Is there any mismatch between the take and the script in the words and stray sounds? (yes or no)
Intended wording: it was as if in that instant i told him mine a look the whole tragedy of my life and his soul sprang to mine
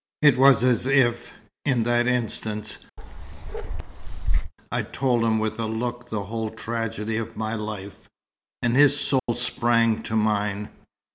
yes